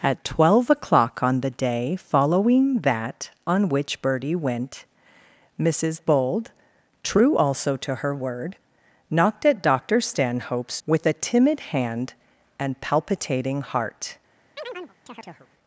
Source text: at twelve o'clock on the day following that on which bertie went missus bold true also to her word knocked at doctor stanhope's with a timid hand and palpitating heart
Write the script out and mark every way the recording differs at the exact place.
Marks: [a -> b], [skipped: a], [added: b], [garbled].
at twelve o'clock on the day following that on which bertie went missus bold true also to her word knocked at doctor stanhope's with a timid hand and palpitating heart